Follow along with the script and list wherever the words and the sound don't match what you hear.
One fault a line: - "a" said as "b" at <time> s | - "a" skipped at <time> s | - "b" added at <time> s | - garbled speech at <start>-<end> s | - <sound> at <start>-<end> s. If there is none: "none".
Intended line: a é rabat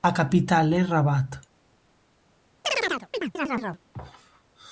- "capital" added at 0.1 s
- chirp at 2.6-3.8 s